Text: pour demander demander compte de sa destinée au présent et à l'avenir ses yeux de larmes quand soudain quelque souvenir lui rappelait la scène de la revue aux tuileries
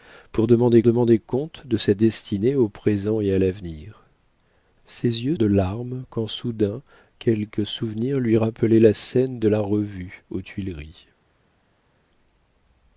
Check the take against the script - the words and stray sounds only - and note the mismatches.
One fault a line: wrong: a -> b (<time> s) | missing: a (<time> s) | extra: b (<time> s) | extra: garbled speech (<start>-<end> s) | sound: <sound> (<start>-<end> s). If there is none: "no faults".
no faults